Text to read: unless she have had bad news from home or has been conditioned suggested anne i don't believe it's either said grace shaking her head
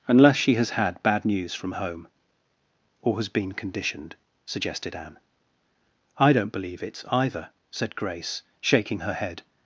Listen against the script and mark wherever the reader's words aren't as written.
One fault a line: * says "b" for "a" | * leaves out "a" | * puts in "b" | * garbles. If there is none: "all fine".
* says "has" for "have"